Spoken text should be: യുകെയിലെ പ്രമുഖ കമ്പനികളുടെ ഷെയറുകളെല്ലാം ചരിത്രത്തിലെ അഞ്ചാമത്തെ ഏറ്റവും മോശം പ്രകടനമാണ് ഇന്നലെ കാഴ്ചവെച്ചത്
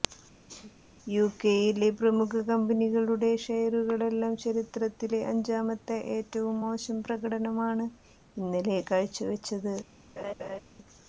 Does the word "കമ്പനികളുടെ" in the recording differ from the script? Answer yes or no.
no